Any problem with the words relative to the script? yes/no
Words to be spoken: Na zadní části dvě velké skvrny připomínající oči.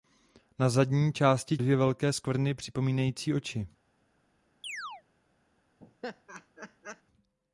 no